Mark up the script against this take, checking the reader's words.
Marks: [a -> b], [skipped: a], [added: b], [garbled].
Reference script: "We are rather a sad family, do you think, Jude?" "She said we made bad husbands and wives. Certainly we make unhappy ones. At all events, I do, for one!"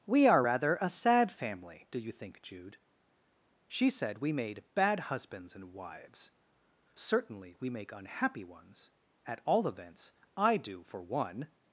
"We are rather a sad family, do you think, Jude?" "She said we made bad husbands and wives. Certainly we make unhappy ones. At all events, I do, for one!"